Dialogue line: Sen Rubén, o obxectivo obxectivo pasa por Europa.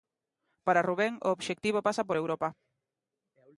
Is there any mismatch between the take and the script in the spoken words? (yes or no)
yes